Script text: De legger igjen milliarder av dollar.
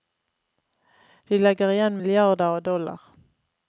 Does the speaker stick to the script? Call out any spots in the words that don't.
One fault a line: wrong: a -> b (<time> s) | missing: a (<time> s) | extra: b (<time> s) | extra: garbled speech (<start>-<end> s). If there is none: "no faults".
no faults